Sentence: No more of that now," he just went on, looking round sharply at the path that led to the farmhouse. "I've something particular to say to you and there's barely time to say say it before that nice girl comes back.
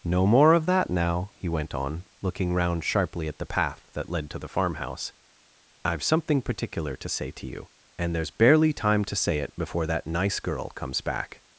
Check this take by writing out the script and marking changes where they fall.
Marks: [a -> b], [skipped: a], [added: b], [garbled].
No more of that now," he [skipped: just] went on, looking round sharply at the path that led to the farmhouse. "I've something particular to say to you and there's barely time to say [skipped: say] it before that nice girl comes back.